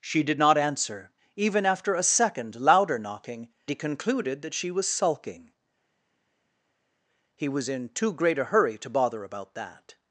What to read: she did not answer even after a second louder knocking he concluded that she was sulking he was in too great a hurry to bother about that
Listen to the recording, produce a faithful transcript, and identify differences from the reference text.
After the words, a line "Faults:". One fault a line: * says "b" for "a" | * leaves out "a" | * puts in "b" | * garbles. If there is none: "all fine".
she did not answer even after a second louder knocking he concluded that she was sulking he was in too great a hurry to bother about that
Faults:
all fine